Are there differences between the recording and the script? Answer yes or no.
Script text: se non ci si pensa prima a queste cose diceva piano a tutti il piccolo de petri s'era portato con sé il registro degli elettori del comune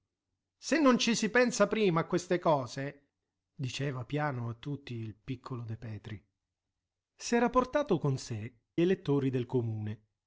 yes